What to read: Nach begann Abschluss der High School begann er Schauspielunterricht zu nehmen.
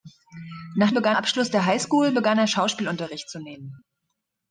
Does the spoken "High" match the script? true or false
true